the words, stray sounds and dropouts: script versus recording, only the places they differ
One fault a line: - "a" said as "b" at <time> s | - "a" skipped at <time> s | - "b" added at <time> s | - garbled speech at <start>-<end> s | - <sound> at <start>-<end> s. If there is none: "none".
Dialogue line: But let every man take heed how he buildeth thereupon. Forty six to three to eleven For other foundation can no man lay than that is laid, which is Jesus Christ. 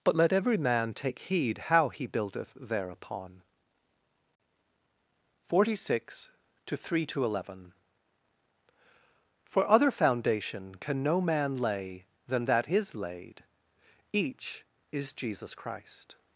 - "which" said as "each" at 14.1 s